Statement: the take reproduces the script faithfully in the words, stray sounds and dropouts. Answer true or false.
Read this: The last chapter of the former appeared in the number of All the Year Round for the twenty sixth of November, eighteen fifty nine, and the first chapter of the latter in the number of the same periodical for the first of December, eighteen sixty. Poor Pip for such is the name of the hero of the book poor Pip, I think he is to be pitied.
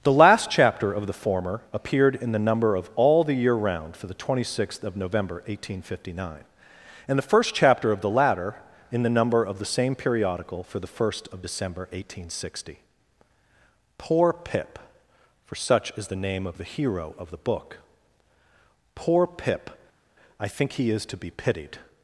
true